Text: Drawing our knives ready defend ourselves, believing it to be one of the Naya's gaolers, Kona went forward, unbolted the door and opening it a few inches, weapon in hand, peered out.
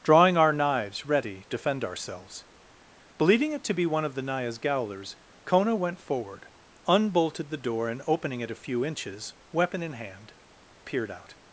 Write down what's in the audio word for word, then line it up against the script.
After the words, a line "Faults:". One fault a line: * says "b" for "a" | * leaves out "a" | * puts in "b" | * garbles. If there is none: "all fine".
Drawing our knives ready defend ourselves, believing it to be one of the Naya's gaolers, Kona went forward, unbolted the door and opening it a few inches, weapon in hand, peered out.
Faults:
all fine